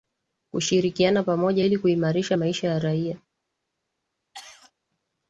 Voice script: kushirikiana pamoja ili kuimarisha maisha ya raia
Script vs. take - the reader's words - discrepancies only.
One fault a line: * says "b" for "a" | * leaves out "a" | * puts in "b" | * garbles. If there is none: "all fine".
all fine